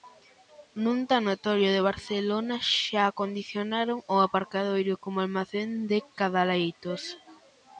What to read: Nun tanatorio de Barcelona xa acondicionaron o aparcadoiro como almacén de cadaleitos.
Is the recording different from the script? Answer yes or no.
no